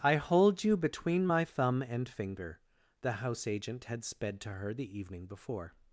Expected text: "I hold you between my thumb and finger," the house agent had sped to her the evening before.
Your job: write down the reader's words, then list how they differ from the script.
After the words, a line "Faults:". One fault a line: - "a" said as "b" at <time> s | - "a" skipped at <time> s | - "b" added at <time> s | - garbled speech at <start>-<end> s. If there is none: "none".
"I hold you between my thumb and finger," the house agent had sped to her the evening before.
Faults:
none